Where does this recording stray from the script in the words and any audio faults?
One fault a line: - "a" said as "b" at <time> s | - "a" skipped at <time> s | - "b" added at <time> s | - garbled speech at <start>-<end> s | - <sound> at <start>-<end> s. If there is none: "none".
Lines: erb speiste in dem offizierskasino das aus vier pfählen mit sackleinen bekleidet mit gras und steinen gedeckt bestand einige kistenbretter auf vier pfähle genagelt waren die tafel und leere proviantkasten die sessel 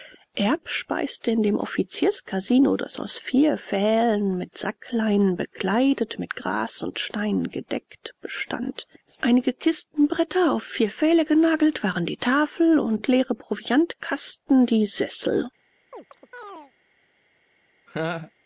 - chirp at 15.9-16.7 s
- laugh at 17.9-18.3 s